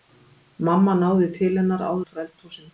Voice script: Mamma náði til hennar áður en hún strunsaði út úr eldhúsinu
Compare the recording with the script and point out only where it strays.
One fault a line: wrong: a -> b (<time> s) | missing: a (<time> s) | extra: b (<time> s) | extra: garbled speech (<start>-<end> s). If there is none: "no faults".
missing: en hún strunsaði (2.0 s)